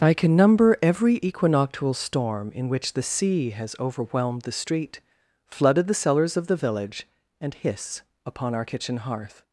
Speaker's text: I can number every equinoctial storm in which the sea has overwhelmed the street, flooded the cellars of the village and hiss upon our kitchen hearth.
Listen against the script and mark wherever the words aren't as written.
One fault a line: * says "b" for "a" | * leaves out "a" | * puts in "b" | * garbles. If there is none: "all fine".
all fine